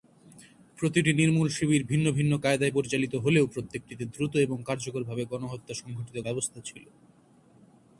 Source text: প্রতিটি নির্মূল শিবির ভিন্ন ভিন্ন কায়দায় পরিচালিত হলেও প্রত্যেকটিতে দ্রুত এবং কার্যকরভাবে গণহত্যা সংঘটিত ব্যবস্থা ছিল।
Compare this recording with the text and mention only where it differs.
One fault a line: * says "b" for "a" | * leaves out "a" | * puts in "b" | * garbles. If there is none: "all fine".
all fine